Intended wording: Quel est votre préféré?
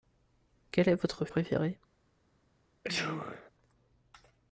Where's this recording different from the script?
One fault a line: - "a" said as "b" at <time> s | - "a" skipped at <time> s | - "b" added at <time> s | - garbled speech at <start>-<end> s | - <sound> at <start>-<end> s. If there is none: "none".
- sneeze at 2.8-3.5 s